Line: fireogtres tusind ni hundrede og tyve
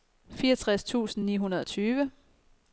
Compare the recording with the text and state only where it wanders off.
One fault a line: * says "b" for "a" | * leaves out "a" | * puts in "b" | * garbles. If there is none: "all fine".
all fine